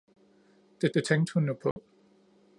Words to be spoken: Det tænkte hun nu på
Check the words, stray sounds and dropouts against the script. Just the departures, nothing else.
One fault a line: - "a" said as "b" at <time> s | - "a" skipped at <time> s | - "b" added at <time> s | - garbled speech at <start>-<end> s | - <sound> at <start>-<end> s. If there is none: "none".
- "det" added at 0.9 s
- dropout at 1.7-1.8 s